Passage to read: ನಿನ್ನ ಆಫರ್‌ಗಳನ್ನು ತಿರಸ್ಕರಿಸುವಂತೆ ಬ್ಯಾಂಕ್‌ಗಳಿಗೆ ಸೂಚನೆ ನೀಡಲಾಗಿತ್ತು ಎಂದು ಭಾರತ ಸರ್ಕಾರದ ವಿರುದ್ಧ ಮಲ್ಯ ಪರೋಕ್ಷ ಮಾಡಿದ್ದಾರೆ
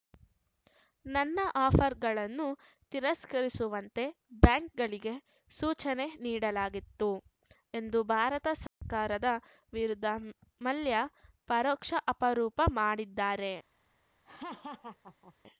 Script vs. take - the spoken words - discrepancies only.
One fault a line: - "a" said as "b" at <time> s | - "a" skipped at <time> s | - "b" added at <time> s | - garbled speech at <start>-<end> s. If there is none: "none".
- "ನಿನ್ನ" said as "ನನ್ನ" at 1.1 s
- "ಆರೋಪ" added at 12.2 s